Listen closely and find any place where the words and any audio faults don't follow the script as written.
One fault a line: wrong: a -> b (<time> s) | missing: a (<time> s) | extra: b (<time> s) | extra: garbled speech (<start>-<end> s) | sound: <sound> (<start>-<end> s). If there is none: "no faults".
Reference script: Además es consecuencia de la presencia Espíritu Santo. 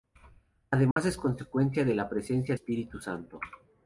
sound: dropout (0.9-1.0 s)